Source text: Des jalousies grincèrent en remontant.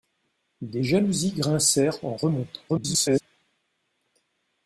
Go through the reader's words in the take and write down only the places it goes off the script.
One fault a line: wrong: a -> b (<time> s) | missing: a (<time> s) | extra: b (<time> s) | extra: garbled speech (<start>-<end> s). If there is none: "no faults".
extra: garbled speech (2.7-3.2 s)